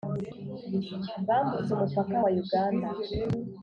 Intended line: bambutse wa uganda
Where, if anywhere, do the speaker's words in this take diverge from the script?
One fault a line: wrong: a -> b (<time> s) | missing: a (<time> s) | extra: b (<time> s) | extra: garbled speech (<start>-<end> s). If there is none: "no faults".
extra: umupaka (1.7 s)